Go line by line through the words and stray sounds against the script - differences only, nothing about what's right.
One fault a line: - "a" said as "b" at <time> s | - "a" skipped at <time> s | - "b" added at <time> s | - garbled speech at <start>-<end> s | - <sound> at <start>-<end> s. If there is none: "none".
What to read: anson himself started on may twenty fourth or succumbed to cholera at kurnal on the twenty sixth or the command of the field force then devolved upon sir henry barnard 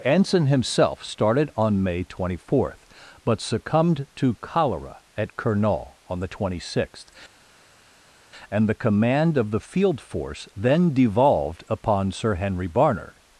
- "or" said as "but" at 3.3 s
- "or" said as "and" at 8.5 s